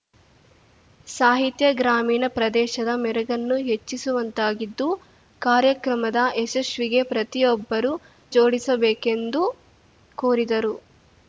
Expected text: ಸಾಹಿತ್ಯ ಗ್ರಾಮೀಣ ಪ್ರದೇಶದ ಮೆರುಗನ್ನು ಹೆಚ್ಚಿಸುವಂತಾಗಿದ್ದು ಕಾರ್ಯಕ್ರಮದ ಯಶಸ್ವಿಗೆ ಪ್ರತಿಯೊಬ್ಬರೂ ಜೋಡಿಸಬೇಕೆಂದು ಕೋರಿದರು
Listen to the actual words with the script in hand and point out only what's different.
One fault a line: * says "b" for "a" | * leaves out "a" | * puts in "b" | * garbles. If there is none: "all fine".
all fine